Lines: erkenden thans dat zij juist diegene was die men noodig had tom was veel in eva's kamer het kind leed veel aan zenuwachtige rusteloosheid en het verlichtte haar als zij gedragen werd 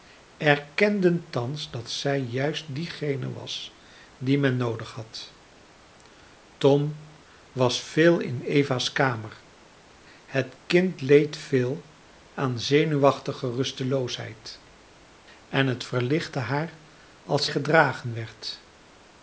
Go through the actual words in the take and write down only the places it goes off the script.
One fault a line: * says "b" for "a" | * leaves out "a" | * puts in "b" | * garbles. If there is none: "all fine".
* leaves out "zij"